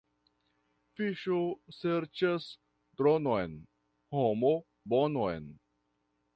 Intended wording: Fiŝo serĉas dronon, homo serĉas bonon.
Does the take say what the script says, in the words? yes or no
no